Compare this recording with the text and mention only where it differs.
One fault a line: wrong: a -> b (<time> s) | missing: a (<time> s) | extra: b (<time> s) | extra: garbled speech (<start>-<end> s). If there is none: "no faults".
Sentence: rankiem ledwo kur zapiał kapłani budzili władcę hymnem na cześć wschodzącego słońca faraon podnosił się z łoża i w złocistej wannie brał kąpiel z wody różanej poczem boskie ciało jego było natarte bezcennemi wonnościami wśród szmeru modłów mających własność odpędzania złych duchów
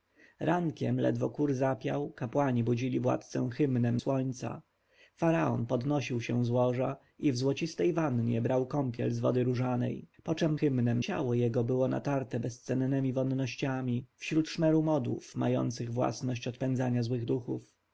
missing: na cześć wschodzącego (4.0 s)
wrong: boskie -> hymnem (10.6 s)